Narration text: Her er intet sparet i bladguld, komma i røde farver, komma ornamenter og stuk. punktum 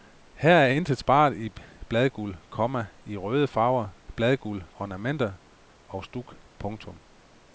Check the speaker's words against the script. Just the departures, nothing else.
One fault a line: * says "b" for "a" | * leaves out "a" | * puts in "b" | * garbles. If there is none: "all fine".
* says "bladguld" for "komma"